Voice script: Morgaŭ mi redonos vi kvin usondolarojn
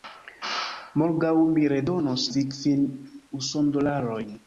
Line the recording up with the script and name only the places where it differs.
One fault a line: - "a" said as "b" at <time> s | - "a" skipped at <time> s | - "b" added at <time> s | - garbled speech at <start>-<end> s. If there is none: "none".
none